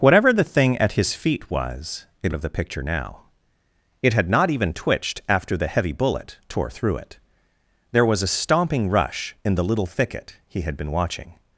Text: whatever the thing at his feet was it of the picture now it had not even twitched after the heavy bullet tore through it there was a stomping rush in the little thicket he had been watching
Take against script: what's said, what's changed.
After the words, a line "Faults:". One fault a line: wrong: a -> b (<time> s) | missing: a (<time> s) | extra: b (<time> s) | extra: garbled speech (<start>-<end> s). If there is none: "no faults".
whatever the thing at his feet was it of the picture now it had not even twitched after the heavy bullet tore through it there was a stomping rush in the little thicket he had been watching
Faults:
no faults